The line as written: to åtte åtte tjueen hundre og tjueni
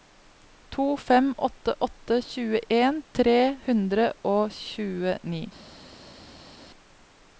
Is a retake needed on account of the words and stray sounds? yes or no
yes